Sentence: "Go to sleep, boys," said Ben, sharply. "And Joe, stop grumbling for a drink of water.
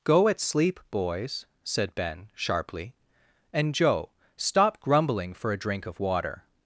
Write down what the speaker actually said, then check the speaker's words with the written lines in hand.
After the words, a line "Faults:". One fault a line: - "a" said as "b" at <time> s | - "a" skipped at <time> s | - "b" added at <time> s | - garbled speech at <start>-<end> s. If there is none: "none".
"Go at sleep, boys," said Ben, sharply. "And Joe, stop grumbling for a drink of water.
Faults:
- "to" said as "at" at 0.3 s